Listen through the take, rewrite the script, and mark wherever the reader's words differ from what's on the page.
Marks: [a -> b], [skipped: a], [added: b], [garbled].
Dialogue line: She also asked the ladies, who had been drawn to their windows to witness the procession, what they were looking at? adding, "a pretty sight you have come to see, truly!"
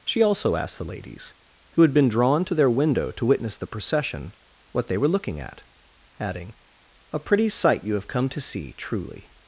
She also asked the ladies, who had been drawn to their [windows -> window] to witness the procession, what they were looking at? adding, "a pretty sight you have come to see, truly!"